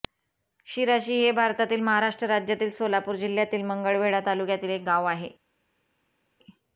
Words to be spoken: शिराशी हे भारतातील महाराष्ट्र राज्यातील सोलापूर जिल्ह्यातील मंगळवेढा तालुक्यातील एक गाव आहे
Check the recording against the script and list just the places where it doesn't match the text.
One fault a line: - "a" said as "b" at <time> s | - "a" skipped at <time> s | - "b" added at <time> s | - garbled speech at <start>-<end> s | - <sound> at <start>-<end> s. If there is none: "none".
none